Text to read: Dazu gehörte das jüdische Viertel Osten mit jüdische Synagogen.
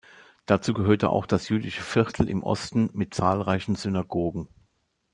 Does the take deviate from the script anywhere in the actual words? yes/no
yes